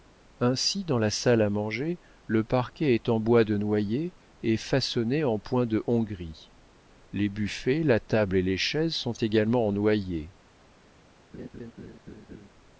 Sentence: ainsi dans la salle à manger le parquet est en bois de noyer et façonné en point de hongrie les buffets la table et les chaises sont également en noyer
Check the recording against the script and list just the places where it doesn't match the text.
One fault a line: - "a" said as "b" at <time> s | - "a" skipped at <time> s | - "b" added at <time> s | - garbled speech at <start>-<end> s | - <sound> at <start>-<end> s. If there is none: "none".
- laugh at 11.3-12.5 s